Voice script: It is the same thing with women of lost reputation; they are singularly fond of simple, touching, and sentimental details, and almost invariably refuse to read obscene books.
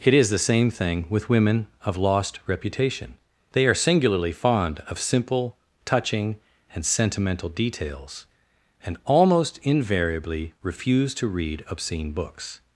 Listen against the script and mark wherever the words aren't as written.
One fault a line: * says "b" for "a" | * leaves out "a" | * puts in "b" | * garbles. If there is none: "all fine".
all fine